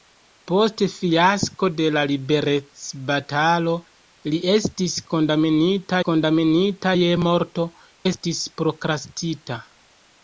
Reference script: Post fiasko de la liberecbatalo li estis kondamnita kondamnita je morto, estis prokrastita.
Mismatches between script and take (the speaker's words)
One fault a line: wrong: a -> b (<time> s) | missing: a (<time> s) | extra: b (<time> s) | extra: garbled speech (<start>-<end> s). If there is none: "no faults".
no faults